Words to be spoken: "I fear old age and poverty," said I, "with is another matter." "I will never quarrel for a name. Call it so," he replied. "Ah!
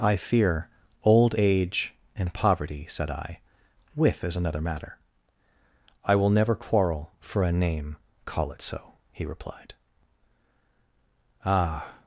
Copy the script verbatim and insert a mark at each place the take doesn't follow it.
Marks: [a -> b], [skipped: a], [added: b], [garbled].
"I fear old age and poverty," said I, "with is another matter." "I will never quarrel for a name. Call it so," he replied. "Ah!